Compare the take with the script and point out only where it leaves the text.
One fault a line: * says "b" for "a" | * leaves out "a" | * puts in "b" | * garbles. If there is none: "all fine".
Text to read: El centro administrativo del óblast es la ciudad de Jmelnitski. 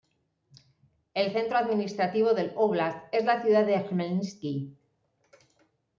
all fine